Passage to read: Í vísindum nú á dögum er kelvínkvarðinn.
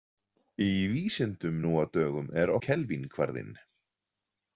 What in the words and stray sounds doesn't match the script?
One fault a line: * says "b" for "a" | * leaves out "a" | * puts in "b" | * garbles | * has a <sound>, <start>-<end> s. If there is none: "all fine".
all fine